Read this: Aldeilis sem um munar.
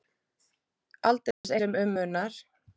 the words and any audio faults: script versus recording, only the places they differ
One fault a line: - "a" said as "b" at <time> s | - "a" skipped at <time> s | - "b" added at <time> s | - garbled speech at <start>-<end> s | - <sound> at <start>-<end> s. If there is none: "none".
- dropout at 1.3-1.4 s